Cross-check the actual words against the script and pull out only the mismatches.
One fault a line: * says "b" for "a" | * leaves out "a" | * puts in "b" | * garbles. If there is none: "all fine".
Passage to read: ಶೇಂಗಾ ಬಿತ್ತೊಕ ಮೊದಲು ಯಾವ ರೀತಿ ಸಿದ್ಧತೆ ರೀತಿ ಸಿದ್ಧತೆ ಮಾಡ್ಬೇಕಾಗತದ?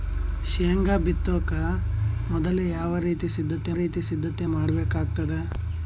all fine